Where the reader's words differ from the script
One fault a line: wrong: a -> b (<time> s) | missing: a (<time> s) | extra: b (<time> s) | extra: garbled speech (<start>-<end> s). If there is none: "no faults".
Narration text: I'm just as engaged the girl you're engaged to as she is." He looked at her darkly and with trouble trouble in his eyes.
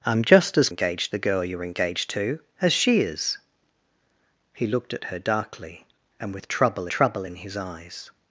no faults